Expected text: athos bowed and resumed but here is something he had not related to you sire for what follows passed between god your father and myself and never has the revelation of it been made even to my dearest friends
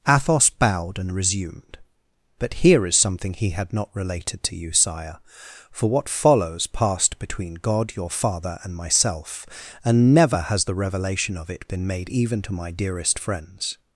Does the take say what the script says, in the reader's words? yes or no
yes